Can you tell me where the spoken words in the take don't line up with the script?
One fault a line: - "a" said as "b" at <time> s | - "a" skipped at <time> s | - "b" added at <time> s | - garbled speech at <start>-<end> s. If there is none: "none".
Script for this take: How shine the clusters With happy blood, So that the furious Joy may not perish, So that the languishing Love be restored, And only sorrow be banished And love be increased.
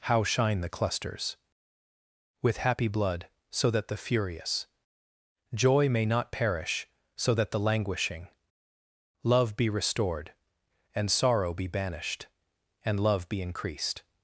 - "only" skipped at 11.1 s